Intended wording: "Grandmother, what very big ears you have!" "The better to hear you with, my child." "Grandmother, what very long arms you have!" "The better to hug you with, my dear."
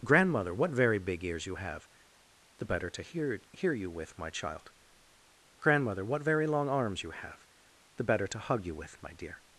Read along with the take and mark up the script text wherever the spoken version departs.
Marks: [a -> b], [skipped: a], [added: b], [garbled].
"Grandmother, what very big ears you have!" "The better to hear [added: hear] you with, my child." "Grandmother, what very long arms you have!" "The better to hug you with, my dear."